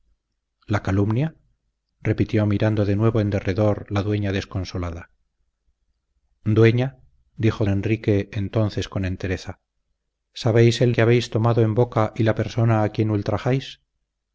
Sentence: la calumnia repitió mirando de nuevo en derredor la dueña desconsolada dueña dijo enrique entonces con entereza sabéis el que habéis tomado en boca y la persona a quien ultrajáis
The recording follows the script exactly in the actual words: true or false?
true